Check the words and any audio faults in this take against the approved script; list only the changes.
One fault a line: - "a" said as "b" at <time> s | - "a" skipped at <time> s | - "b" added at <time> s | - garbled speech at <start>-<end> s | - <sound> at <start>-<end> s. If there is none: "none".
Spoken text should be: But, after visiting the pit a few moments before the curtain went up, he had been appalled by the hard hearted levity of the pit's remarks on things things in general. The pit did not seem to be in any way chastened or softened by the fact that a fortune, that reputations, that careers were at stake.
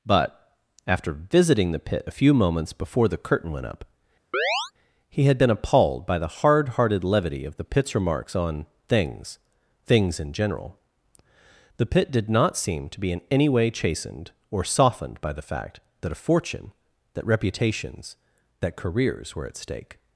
- chirp at 4.3-4.7 s